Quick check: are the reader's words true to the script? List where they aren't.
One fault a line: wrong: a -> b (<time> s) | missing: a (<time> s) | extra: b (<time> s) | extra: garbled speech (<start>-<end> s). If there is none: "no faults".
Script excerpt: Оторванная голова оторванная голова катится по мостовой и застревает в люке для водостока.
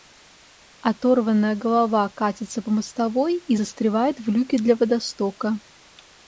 missing: оторванная голова (2.1 s)